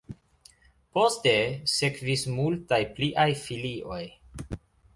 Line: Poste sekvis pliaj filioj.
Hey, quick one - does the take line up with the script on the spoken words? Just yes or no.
no